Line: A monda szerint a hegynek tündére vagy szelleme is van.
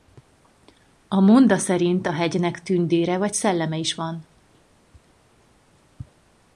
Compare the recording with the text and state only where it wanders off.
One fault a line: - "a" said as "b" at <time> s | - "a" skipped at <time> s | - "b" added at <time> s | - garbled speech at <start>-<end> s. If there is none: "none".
none